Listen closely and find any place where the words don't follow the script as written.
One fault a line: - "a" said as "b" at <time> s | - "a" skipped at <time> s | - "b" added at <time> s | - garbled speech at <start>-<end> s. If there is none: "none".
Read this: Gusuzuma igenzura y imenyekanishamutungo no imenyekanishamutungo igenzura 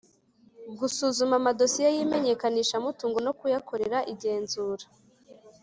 - "igenzura" said as "amadosiye" at 1.4 s
- "imenyekanishamutungo" said as "kuyakorera" at 3.4 s